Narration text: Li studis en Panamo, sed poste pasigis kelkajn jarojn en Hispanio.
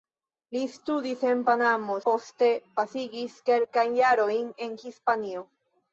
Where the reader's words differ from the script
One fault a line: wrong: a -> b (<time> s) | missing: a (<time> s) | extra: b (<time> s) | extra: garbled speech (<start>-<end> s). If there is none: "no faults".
missing: sed (2.0 s)